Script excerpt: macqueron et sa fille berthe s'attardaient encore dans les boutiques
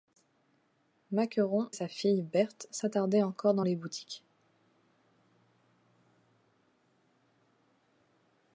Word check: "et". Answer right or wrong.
wrong